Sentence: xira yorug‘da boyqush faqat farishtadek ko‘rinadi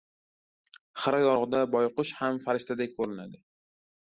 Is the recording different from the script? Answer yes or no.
yes